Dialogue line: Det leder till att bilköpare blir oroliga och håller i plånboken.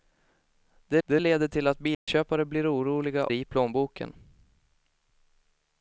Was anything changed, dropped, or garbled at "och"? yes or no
yes